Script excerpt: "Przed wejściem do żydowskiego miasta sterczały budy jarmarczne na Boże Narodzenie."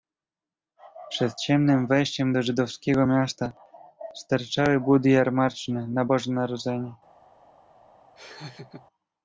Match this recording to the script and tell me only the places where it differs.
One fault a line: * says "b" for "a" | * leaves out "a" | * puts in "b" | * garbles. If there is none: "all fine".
* puts in "ciemnem"